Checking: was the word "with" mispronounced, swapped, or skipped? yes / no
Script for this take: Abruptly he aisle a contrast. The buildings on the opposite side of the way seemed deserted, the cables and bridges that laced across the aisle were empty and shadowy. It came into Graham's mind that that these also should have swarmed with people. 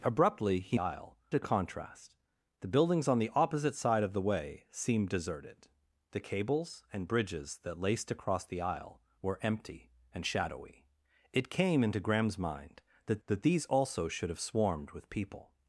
no